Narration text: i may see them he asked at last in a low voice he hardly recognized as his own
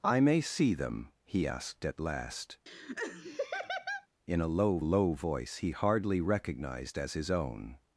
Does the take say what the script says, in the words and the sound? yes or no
no